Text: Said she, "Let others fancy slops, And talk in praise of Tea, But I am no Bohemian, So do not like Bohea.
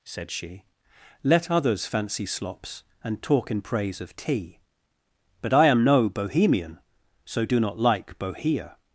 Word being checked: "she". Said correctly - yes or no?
yes